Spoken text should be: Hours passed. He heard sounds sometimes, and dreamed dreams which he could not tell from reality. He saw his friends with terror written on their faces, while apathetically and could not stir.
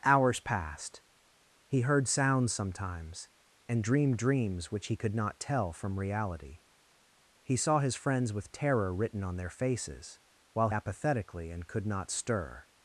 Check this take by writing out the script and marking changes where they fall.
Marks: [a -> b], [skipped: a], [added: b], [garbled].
Hours passed. He heard sounds sometimes, and dreamed dreams which he could not tell from reality. He saw his friends with terror written on their faces, while apathetically and could not stir.